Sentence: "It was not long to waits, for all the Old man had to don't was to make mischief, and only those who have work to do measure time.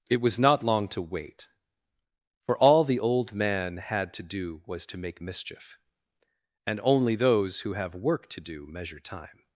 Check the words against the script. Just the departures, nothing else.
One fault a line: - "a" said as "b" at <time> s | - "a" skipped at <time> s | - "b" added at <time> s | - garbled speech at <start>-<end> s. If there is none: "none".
- "waits" said as "wait" at 1.0 s
- "don't" said as "do" at 4.2 s